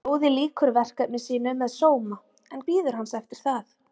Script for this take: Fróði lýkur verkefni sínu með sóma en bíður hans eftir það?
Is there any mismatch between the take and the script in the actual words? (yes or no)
no